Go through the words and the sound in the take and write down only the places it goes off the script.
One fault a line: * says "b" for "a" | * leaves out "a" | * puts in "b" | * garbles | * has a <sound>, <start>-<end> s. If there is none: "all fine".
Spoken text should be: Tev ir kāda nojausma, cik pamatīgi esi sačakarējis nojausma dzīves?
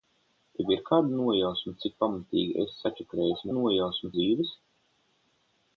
all fine